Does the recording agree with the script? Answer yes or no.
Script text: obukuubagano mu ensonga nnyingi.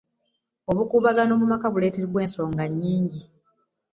no